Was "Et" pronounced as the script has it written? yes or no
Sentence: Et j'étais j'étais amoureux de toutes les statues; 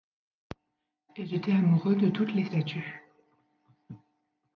yes